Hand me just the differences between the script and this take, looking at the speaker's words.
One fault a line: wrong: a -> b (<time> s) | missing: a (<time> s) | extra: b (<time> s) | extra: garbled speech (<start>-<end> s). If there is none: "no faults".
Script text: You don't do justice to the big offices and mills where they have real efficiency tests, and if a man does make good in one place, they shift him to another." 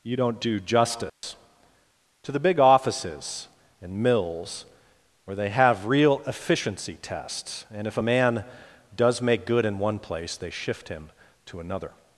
no faults